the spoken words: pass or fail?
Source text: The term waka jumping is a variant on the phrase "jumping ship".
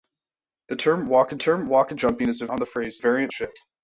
fail